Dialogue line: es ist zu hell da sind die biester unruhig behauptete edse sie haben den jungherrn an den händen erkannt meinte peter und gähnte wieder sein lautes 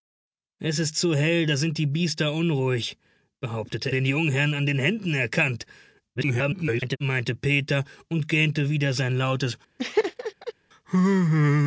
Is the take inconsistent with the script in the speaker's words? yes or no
yes